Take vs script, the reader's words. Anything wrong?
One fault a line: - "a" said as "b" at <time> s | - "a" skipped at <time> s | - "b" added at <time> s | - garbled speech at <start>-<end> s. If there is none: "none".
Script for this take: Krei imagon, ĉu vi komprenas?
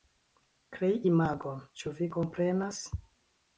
none